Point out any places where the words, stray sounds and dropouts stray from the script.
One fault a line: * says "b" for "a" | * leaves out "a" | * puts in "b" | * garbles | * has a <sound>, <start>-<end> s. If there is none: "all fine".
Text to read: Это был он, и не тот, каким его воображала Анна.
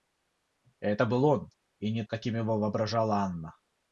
* leaves out "тот"